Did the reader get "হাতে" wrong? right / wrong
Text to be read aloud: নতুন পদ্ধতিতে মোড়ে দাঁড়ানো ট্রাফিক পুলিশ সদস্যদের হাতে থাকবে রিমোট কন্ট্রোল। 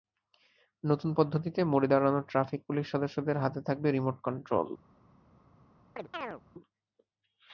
right